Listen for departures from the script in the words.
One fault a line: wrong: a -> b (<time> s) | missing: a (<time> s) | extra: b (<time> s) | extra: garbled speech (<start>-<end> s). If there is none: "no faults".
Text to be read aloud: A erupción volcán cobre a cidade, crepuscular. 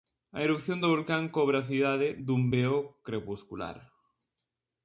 extra: do (0.8 s)
extra: dun veo (2.3 s)